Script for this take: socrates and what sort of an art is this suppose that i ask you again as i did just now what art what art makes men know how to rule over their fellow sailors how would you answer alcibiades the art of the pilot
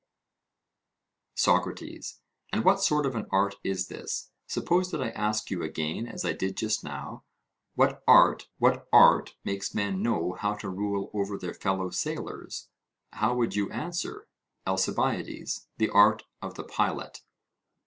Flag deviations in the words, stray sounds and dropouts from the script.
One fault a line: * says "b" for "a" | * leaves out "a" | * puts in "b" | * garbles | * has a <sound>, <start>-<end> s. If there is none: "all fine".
all fine